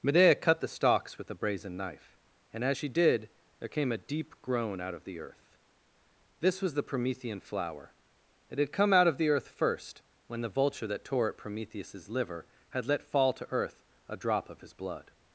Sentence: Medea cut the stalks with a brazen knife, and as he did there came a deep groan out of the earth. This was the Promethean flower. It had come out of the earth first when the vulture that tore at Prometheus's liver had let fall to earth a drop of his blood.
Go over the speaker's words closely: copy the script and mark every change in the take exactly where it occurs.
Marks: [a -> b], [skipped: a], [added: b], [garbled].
Medea cut the stalks with a brazen knife, and as [he -> she] did there came a deep groan out of the earth. This was the Promethean flower. It had come out of the earth first when the vulture that tore at Prometheus's liver had let fall to earth a drop of his blood.